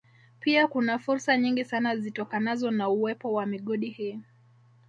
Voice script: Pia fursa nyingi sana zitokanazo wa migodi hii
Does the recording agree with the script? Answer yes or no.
no